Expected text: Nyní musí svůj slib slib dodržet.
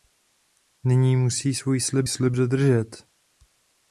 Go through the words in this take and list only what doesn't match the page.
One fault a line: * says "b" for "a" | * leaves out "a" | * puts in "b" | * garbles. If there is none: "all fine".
all fine